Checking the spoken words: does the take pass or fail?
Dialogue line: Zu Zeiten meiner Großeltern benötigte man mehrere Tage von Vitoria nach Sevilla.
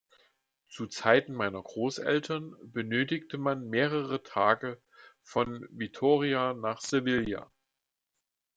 pass